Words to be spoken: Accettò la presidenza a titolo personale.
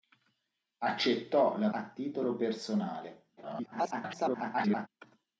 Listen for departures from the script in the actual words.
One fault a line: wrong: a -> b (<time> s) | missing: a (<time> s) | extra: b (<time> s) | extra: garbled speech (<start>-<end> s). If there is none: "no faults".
missing: presidenza (1.7 s)
extra: garbled speech (3.4-4.9 s)